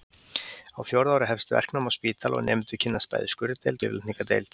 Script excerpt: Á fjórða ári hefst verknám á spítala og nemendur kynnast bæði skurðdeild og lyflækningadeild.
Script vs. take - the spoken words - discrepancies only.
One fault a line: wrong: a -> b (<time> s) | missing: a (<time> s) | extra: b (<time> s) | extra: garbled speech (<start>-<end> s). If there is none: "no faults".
missing: og (3.9 s)